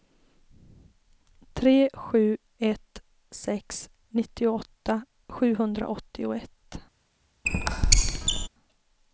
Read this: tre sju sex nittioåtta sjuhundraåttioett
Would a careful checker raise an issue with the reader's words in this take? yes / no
yes